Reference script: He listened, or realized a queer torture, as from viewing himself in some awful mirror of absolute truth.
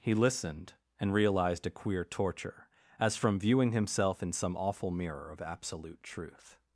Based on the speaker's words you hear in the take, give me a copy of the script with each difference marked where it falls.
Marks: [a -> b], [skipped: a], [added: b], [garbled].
He listened, [or -> and] realized a queer torture, as from viewing himself in some awful mirror of absolute truth.